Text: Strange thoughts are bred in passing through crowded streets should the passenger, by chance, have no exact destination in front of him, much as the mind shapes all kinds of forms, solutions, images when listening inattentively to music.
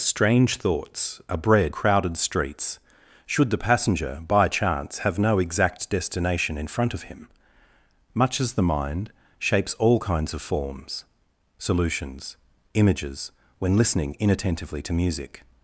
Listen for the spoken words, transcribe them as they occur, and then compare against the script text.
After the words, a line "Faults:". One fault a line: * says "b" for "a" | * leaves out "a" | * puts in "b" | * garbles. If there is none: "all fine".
Strange thoughts are bred crowded streets should the passenger, by chance, have no exact destination in front of him, much as the mind shapes all kinds of forms, solutions, images when listening inattentively to music.
Faults:
* leaves out "in passing through"